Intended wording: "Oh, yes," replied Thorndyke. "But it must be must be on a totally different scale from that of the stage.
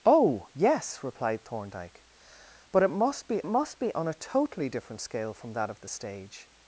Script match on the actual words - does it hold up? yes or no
yes